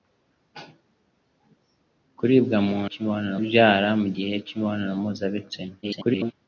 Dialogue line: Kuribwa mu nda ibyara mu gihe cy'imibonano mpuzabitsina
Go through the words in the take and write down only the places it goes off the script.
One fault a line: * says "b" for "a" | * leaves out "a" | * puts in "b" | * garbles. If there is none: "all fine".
* says "cy'imibonano" for "nda"
* garbles